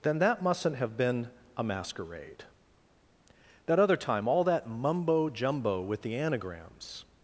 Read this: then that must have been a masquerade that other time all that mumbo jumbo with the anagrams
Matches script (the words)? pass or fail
fail